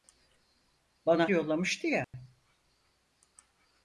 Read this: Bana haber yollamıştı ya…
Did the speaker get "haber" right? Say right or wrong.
wrong